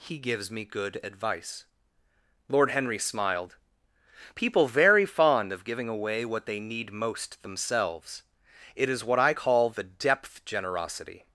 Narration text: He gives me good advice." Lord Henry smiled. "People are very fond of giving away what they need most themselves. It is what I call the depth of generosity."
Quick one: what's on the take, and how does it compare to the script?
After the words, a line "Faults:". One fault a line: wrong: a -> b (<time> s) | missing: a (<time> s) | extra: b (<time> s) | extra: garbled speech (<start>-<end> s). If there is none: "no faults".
He gives me good advice." Lord Henry smiled. "People very fond of giving away what they need most themselves. It is what I call the depth generosity."
Faults:
missing: are (4.7 s)
missing: of (10.4 s)